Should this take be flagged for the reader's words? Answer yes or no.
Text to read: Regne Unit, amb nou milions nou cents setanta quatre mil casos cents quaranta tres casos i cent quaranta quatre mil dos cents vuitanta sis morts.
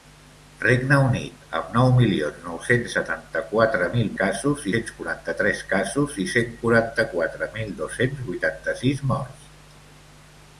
no